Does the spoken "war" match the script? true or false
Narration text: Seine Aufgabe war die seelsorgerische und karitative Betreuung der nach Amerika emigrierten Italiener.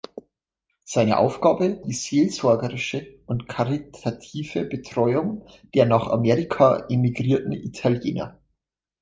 false